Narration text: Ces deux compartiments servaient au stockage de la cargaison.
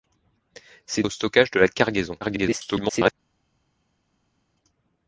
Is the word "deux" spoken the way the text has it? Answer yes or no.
no